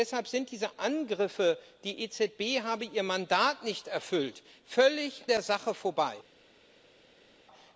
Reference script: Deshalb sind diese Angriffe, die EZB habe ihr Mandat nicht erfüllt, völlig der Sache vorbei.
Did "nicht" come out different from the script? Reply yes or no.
no